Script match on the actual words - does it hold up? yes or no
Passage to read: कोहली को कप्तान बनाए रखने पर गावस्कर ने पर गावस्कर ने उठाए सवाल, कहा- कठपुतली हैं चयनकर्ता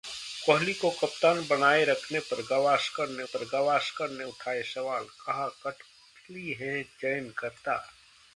yes